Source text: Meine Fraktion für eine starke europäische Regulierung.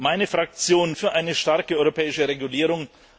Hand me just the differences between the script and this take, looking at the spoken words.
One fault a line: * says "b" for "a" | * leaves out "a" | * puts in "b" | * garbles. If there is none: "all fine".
all fine